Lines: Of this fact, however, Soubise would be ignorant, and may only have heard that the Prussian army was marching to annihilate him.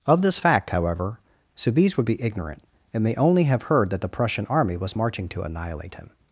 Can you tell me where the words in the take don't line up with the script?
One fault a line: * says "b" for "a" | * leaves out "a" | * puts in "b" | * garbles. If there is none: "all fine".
all fine